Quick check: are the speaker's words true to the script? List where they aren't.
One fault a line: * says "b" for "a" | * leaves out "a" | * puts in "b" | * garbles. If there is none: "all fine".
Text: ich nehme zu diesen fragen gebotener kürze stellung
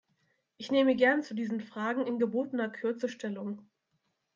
* puts in "gern"
* puts in "in"